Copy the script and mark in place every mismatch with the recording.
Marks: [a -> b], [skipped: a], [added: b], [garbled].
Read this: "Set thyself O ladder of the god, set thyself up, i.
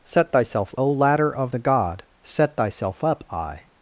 "Set thyself O ladder of the god, set thyself up, i.